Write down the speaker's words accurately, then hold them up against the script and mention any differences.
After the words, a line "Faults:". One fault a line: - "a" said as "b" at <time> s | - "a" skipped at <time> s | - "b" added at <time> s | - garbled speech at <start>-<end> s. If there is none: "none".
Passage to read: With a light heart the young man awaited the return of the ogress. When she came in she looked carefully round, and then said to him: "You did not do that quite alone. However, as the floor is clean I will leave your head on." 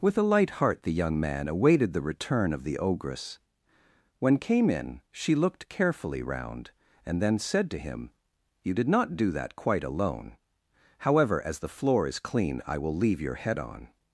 With a light heart the young man awaited the return of the ogress. When came in she looked carefully round, and then said to him: "You did not do that quite alone. However, as the floor is clean I will leave your head on."
Faults:
- "she" skipped at 4.4 s